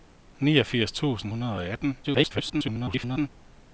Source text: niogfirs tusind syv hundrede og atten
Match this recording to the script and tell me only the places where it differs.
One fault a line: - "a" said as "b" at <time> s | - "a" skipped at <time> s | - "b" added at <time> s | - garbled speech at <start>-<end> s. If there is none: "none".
- "syv" skipped at 1.3 s
- garbled speech at 2.0-3.3 s